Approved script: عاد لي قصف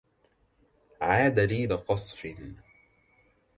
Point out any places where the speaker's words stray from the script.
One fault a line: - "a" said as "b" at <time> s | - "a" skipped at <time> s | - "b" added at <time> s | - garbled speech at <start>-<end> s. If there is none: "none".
none